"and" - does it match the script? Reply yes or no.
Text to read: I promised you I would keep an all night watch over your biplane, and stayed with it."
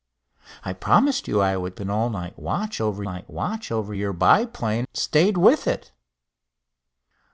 no